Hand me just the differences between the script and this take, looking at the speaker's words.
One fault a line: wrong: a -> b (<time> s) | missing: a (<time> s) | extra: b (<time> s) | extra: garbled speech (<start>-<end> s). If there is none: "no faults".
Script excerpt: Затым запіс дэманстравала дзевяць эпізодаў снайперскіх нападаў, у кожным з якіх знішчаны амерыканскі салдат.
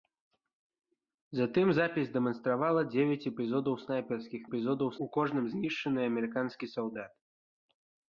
wrong: нападаў -> эпізодаў (4.5 s)
missing: з якіх (5.4 s)